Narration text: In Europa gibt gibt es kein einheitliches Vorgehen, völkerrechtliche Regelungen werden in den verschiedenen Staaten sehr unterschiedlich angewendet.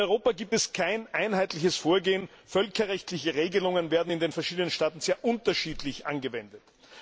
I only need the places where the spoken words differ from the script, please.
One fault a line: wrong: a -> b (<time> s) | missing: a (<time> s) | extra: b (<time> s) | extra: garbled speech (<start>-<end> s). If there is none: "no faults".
missing: gibt (0.6 s)